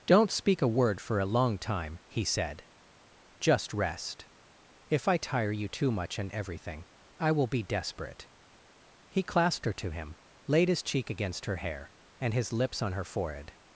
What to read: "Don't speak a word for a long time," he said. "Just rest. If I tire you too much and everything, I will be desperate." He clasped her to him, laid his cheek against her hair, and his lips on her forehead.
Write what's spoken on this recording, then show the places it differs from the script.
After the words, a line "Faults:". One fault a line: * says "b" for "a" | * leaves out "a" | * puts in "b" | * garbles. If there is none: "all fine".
"Don't speak a word for a long time," he said. "Just rest. If I tire you too much and everything, I will be desperate." He clasped her to him, laid his cheek against her hair, and his lips on her forehead.
Faults:
all fine